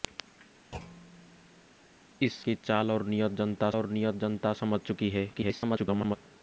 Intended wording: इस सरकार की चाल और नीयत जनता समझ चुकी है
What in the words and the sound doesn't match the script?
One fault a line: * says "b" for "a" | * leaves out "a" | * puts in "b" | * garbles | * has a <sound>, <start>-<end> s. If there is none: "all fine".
* has a thud, 0.7-1.7 s
* leaves out "सरकार"
* puts in "और नीयत जनता"
* garbles